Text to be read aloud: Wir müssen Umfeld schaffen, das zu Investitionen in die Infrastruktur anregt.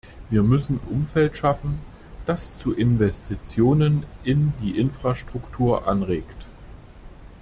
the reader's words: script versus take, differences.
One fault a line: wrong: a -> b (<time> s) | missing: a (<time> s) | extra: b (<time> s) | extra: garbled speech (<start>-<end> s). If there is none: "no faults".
no faults